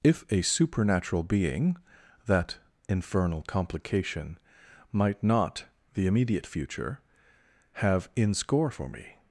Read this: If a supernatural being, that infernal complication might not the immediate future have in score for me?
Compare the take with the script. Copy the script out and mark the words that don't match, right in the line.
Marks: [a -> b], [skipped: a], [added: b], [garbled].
If a supernatural being, that infernal complication might not the immediate future have in score for me?